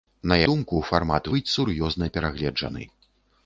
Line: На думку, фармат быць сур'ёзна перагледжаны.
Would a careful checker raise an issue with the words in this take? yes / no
no